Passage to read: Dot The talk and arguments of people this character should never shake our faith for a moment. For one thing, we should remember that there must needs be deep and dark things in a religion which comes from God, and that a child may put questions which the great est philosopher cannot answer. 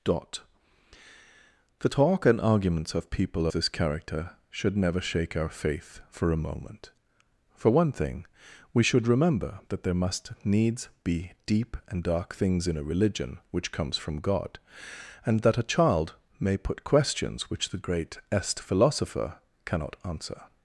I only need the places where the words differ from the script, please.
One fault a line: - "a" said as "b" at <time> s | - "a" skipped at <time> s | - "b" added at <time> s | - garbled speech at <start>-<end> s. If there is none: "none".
none